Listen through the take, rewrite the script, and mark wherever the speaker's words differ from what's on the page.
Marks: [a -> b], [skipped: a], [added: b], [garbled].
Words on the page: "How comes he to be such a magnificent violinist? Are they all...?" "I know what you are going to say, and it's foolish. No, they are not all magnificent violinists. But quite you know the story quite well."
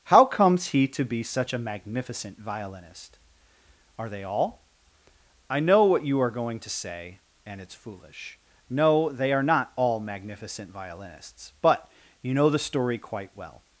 "How comes he to be such a magnificent violinist? Are they all...?" "I know what you are going to say, and it's foolish. No, they are not all magnificent violinists. But [skipped: quite] you know the story quite well."